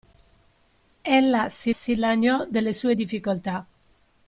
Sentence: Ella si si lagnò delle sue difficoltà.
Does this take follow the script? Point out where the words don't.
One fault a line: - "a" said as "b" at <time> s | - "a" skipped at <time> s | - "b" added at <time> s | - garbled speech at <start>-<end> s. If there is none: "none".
none